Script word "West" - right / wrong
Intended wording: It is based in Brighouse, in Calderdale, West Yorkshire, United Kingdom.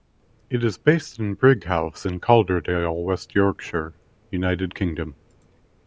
right